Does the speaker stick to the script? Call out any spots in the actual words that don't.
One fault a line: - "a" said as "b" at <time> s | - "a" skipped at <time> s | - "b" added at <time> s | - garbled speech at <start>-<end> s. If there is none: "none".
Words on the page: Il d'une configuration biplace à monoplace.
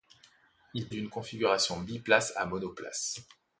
none